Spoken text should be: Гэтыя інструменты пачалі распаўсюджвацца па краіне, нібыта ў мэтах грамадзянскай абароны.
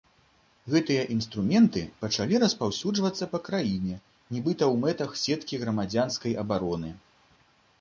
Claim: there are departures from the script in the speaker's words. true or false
true